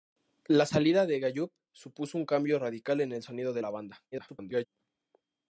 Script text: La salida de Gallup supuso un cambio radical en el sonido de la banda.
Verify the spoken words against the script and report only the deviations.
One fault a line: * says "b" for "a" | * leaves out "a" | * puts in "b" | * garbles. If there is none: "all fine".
* garbles